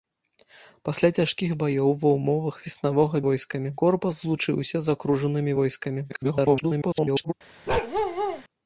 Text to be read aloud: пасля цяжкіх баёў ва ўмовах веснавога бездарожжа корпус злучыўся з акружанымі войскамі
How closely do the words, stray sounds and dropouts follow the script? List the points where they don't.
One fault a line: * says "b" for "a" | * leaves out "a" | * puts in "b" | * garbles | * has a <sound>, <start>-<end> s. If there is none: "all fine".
* says "войскамі" for "бездарожжа"
* garbles
* has a bark, 7.7-8.4 s